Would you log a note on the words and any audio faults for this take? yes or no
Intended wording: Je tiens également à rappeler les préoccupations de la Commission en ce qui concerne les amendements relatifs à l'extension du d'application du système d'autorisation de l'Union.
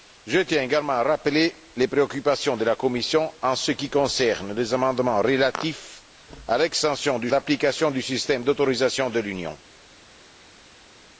no